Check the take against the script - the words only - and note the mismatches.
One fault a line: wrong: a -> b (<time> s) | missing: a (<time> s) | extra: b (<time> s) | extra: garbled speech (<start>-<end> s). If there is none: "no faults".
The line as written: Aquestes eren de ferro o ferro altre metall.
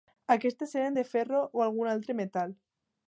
wrong: ferro -> algun (1.7 s)